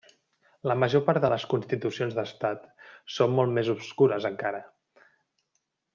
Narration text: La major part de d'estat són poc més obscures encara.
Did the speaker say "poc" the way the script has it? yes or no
no